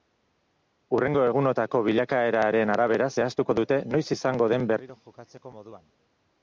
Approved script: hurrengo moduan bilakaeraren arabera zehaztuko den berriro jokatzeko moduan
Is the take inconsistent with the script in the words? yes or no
yes